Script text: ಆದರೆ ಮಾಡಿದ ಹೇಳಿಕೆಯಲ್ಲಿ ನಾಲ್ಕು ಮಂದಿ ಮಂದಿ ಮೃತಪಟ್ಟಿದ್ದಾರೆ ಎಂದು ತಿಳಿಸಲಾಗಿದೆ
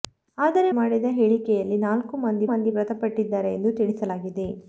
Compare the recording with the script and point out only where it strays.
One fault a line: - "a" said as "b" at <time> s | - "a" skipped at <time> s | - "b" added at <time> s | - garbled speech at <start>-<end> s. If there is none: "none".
none